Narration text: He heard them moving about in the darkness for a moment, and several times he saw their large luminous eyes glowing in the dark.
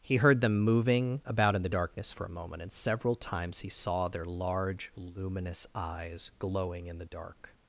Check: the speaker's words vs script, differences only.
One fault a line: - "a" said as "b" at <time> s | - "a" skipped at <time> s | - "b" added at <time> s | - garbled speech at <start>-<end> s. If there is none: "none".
none